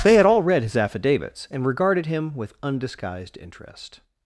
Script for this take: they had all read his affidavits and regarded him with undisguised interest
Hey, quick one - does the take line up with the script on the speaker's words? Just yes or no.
yes